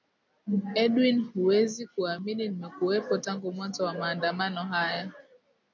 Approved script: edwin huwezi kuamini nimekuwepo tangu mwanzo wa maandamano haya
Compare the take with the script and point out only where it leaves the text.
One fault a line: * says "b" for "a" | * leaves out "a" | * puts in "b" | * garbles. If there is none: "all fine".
all fine